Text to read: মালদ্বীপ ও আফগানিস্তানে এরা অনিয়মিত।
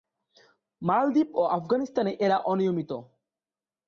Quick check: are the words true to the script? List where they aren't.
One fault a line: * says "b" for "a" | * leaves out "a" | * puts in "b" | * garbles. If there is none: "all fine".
all fine